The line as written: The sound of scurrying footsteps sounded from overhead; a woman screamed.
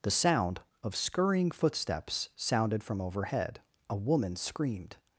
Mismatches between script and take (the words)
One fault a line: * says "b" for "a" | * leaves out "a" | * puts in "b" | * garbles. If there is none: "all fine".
all fine